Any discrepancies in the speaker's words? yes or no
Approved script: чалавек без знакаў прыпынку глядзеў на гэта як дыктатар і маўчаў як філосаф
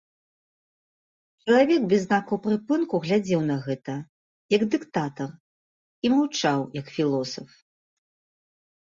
no